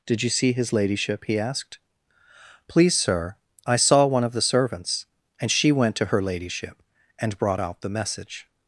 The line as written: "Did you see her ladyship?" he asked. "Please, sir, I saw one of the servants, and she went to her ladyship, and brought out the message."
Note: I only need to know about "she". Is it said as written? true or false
true